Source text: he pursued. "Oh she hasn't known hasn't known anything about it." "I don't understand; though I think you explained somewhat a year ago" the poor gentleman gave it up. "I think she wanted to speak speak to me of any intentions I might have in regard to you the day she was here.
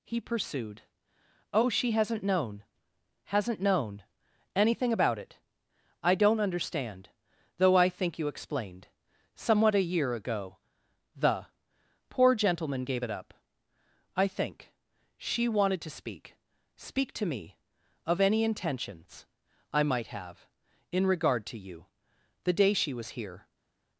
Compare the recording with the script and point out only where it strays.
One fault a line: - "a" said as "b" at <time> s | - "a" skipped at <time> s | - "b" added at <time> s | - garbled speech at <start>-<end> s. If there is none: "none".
none